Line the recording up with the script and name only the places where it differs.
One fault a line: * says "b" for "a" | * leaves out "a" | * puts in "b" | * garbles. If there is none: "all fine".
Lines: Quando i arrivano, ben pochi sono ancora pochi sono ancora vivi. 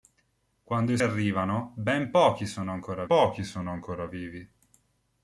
all fine